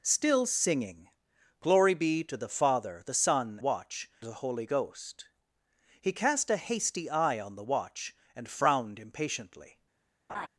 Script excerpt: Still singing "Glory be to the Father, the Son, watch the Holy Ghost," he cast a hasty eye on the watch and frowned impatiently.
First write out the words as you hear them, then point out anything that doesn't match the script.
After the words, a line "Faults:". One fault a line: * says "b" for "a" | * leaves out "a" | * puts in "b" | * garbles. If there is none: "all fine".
Still singing "Glory be to the Father, the Son, watch the Holy Ghost," he cast a hasty eye on the watch and frowned impatiently.
Faults:
all fine